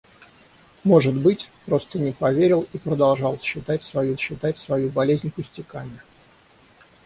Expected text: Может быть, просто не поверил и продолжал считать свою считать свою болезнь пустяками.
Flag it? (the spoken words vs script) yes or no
no